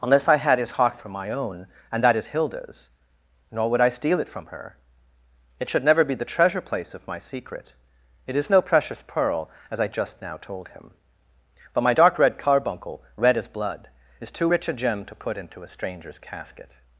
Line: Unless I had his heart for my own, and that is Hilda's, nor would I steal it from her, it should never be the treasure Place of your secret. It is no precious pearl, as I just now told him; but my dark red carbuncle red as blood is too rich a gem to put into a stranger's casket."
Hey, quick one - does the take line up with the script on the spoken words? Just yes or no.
no